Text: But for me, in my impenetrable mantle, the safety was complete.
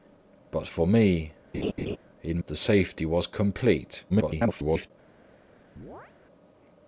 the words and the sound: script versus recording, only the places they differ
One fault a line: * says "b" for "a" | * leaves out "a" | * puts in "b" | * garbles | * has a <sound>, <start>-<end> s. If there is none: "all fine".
* has a laugh, 1.5-2.0 s
* leaves out "my impenetrable mantle"
* garbles
* has a chirp, 5.8-6.1 s